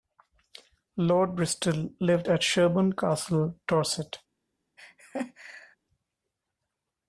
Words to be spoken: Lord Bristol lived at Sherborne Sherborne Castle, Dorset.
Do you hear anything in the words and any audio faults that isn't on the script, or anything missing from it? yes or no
yes